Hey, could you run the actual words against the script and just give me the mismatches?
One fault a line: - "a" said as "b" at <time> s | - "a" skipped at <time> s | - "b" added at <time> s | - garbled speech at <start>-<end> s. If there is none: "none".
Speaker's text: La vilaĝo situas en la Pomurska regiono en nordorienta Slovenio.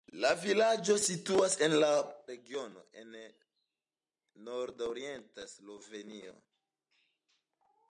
- "Pomurska" skipped at 1.9 s